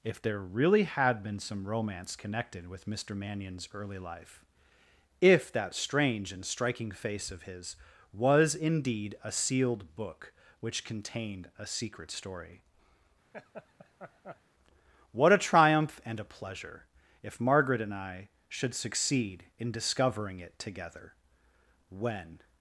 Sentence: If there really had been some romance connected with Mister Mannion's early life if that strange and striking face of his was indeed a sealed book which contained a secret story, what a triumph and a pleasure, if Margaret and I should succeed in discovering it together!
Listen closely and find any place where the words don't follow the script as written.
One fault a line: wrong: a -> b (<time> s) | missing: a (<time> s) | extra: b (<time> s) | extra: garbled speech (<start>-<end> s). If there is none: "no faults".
extra: When (21.9 s)